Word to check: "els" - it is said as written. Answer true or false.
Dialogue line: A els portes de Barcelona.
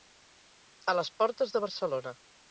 false